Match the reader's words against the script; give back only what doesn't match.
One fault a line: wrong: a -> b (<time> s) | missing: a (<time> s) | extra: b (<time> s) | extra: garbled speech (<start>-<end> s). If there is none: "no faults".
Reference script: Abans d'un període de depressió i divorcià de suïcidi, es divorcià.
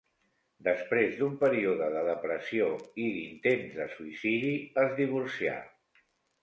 wrong: Abans -> Després (0.7 s)
wrong: divorcià -> d'intents (3.2 s)